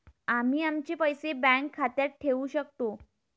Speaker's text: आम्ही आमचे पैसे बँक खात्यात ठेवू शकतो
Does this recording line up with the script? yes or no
yes